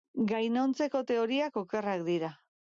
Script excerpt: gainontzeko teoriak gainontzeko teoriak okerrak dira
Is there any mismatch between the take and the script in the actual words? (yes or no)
yes